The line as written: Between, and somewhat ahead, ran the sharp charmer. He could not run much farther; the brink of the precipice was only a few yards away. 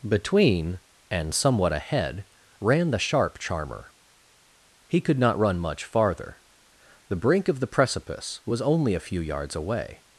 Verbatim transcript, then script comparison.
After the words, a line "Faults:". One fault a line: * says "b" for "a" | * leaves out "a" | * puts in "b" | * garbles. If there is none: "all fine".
Between, and somewhat ahead, ran the sharp charmer. He could not run much farther; the brink of the precipice was only a few yards away.
Faults:
all fine